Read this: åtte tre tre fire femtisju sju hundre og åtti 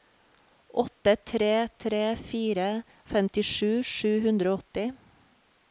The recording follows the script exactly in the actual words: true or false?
true